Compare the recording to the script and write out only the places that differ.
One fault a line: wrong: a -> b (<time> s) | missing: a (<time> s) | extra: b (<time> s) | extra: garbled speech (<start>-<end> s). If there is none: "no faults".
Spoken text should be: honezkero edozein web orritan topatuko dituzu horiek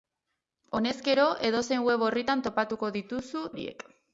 no faults